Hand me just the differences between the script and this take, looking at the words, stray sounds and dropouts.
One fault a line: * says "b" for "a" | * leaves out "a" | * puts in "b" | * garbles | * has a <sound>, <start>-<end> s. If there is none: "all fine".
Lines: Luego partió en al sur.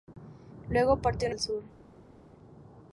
all fine